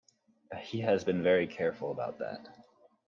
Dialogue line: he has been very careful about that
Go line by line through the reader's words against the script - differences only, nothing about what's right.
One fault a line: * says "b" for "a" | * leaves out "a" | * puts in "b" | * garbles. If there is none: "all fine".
all fine